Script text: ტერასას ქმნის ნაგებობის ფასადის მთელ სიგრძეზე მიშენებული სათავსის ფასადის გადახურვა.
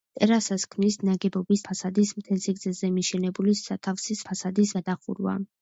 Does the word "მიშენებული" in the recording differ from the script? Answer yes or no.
no